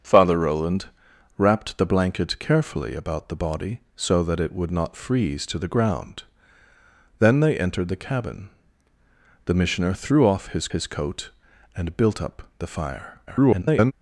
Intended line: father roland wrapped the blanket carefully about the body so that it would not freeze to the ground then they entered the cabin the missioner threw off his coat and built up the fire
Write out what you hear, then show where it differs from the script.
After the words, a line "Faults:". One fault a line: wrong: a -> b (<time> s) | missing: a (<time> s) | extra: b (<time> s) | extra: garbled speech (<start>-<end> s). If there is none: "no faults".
father roland wrapped the blanket carefully about the body so that it would not freeze to the ground then they entered the cabin the missioner threw off his his coat and built up the fire [garbled]
Faults:
extra: his (10.7 s)
extra: garbled speech (13.3-13.9 s)